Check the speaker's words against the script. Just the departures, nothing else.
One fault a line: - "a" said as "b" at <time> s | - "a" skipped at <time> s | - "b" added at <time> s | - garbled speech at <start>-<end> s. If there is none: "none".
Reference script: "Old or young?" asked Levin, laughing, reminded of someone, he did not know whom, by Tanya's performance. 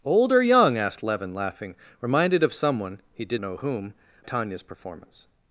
- "not" skipped at 3.4 s
- "by" skipped at 3.9 s